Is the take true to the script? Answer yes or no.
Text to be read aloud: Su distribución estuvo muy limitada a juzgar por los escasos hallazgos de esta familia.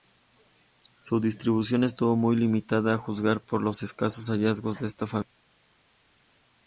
yes